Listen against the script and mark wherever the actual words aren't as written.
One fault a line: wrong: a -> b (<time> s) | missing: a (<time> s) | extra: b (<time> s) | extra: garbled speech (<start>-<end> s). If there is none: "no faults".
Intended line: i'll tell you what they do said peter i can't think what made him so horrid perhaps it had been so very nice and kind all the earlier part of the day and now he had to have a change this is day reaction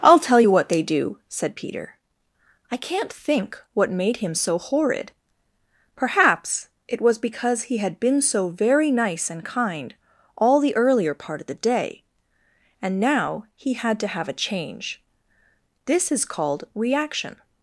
extra: was because he (7.0 s)
wrong: day -> called (16.2 s)